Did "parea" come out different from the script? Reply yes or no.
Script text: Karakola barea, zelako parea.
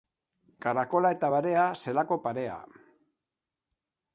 no